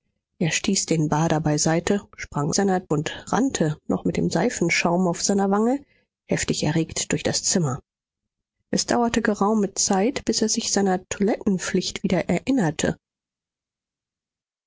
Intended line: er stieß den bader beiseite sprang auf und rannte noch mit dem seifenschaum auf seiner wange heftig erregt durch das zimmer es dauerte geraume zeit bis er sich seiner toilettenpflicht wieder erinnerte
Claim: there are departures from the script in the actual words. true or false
true